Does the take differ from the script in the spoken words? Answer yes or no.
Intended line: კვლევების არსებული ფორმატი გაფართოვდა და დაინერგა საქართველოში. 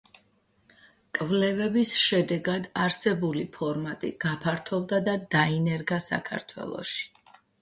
yes